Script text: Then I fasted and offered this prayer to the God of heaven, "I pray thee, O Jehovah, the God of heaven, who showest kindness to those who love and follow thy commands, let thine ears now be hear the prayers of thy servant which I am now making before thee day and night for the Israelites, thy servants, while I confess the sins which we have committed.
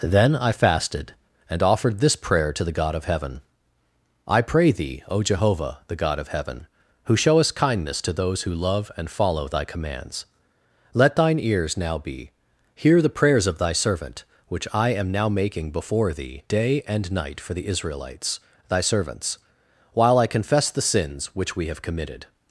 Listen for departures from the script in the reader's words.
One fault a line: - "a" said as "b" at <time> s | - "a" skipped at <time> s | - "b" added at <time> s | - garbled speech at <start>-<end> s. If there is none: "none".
none